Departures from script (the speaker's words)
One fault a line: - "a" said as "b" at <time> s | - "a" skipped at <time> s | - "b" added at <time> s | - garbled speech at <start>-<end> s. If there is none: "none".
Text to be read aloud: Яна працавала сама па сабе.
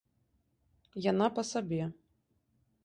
- "працавала сама" skipped at 1.3 s